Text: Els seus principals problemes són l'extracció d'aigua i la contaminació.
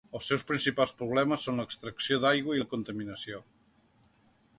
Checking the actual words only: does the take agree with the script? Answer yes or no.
yes